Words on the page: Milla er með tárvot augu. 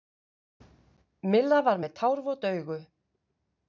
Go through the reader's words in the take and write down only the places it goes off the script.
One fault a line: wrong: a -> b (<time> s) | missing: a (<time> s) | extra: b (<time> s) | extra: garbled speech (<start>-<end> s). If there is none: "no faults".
wrong: er -> var (1.7 s)